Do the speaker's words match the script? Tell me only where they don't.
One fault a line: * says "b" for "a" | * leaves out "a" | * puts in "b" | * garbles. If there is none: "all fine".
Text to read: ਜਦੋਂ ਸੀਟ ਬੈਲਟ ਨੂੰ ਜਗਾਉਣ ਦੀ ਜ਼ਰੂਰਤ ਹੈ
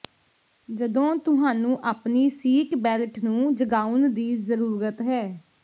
* puts in "ਤੁਹਾਨੂੰ ਆਪਣੀ"